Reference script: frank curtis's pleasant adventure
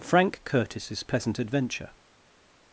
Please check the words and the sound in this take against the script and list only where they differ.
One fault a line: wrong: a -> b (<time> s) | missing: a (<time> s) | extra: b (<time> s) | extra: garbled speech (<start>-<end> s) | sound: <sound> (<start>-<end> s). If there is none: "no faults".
no faults